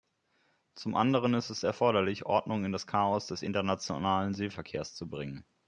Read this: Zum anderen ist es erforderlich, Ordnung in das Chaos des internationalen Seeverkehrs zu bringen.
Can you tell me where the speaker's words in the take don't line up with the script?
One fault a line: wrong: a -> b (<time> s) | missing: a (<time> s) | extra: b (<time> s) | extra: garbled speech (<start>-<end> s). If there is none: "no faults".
no faults